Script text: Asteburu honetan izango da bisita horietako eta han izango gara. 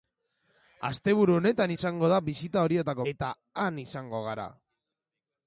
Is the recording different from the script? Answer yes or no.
no